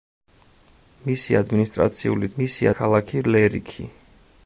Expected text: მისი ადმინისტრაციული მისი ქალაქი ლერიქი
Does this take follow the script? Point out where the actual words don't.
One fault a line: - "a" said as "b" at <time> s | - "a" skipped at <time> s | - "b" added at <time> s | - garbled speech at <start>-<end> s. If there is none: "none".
none